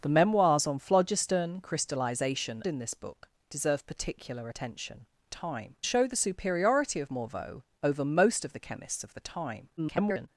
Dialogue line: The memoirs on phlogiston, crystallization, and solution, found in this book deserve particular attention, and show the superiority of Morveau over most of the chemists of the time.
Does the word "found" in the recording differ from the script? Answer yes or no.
yes